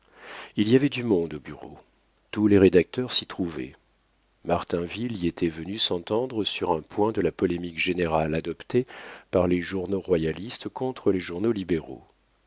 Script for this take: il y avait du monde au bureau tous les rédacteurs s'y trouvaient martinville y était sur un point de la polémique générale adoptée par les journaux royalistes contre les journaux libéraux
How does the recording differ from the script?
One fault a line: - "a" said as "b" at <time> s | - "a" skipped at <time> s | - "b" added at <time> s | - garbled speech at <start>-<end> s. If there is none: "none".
- "venu s'entendre" added at 5.5 s